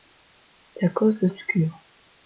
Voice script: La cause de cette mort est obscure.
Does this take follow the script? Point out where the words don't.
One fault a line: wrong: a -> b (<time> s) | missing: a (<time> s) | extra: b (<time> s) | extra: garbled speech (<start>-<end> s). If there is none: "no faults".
missing: cette mort est (1.3 s)